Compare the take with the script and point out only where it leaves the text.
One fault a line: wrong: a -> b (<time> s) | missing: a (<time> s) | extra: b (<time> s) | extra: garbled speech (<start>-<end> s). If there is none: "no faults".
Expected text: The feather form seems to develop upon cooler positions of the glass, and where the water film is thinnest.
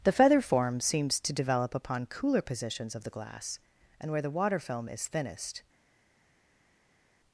no faults